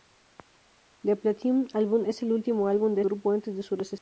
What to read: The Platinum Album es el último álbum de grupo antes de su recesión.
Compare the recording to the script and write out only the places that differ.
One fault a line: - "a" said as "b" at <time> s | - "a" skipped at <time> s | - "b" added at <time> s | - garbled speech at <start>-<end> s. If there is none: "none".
none